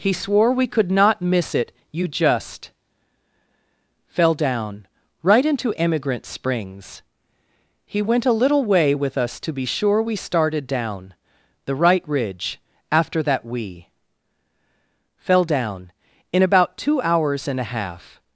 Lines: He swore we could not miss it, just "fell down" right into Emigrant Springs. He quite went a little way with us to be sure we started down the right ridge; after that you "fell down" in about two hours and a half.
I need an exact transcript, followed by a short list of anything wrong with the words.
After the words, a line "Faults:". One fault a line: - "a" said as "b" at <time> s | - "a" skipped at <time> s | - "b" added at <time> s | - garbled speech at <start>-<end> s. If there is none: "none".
He swore we could not miss it, you just "fell down" right into Emigrant Springs. He went a little way with us to be sure we started down the right ridge; after that we "fell down" in about two hours and a half.
Faults:
- "you" added at 1.9 s
- "quite" skipped at 8.0 s
- "you" said as "we" at 13.4 s